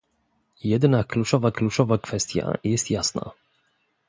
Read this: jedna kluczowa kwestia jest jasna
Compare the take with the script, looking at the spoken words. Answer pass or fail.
fail